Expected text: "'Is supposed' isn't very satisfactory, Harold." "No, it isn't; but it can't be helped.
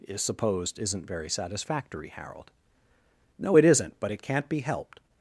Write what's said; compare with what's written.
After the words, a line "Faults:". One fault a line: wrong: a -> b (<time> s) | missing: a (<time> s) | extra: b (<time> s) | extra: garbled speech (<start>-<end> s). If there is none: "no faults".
"'Is supposed' isn't very satisfactory, Harold." "No, it isn't; but it can't be helped.
Faults:
no faults